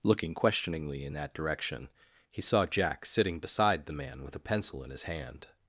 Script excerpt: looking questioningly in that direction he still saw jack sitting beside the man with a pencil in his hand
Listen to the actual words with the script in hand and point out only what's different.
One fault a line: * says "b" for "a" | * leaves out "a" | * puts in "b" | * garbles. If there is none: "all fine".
* leaves out "still"